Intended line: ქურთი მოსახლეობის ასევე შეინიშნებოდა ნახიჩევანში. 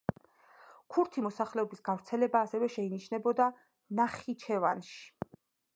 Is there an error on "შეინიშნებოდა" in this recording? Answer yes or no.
no